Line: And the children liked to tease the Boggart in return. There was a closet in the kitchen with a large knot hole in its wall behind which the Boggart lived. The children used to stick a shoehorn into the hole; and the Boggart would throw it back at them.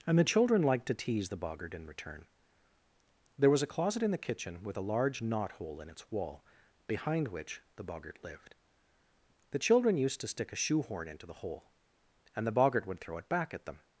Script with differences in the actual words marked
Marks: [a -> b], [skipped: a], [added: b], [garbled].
And the children liked to tease the Boggart in return. There was a closet in the kitchen with a large knot hole in its wall behind which the Boggart lived. The children used to stick a shoehorn into the hole; and the Boggart would throw it back at them.